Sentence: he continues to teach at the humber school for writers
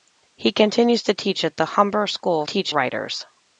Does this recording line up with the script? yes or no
no